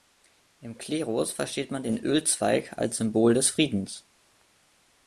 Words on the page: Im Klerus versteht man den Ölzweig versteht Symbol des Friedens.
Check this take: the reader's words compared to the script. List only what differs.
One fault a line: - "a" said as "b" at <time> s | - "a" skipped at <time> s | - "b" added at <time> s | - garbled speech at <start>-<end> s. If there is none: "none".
- "versteht" said as "als" at 2.8 s